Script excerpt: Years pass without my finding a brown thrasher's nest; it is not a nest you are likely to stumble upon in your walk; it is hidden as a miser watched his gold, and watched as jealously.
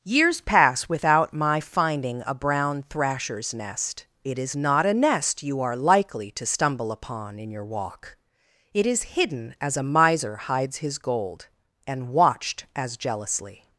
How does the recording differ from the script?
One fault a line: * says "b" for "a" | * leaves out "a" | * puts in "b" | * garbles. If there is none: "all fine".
* says "hides" for "watched"